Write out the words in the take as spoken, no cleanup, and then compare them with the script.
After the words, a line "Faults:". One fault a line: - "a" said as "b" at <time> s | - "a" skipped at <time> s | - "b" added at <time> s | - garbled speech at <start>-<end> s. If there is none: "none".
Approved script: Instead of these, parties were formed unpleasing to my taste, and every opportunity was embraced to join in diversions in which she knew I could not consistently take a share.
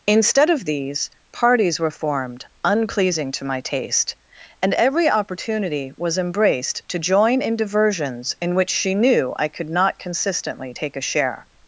Instead of these, parties were formed unpleasing to my taste, and every opportunity was embraced to join in diversions in which she knew I could not consistently take a share.
Faults:
none